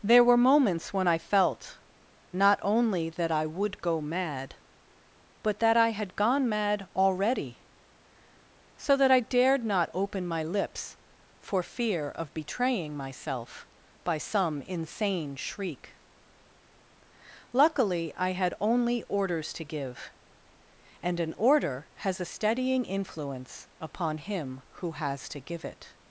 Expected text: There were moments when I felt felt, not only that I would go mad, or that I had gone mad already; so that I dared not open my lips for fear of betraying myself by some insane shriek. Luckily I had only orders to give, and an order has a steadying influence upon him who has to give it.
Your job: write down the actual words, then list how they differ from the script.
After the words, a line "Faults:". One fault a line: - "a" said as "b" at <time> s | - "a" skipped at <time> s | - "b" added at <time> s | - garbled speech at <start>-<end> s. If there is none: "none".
There were moments when I felt, not only that I would go mad, but that I had gone mad already; so that I dared not open my lips for fear of betraying myself by some insane shriek. Luckily I had only orders to give, and an order has a steadying influence upon him who has to give it.
Faults:
- "felt" skipped at 1.8 s
- "or" said as "but" at 5.4 s